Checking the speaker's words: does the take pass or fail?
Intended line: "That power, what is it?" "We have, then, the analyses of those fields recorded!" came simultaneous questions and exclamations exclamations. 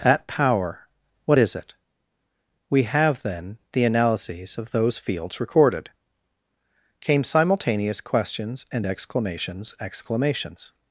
pass